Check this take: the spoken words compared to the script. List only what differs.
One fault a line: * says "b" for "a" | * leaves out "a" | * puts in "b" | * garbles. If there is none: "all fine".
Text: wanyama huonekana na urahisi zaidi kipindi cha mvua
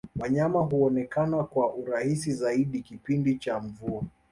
* says "kwa" for "na"